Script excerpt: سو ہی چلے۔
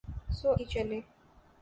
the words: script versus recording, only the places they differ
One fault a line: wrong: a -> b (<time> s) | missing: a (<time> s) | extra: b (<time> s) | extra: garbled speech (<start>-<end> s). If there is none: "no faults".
no faults